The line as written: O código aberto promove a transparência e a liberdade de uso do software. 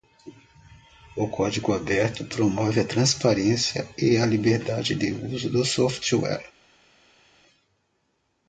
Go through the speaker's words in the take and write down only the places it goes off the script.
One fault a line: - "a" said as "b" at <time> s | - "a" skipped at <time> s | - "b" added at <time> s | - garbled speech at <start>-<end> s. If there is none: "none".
none